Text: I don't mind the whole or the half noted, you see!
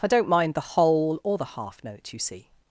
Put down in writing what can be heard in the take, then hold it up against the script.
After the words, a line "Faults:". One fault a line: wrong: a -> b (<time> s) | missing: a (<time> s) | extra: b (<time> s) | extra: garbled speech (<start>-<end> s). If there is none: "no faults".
I don't mind the whole or the half note, you see!
Faults:
wrong: noted -> note (1.8 s)